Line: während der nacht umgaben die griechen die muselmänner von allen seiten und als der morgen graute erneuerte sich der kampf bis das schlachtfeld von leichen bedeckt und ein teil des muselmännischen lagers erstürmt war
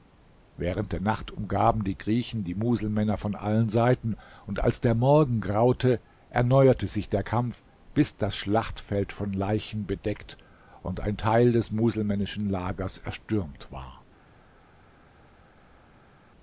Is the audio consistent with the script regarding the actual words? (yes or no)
yes